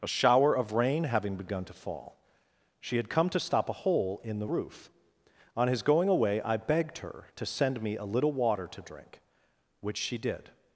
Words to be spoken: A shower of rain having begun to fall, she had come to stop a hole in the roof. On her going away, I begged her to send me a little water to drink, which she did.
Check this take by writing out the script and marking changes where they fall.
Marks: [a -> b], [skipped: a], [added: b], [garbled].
A shower of rain having begun to fall, she had come to stop a hole in the roof. On [her -> his] going away, I begged her to send me a little water to drink, which she did.